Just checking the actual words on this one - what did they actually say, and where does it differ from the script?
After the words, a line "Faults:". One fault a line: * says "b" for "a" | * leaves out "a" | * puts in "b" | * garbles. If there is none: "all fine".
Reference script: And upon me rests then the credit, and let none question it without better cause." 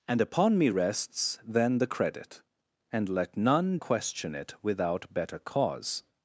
And upon me rests then the credit, and let none question it without better cause."
Faults:
all fine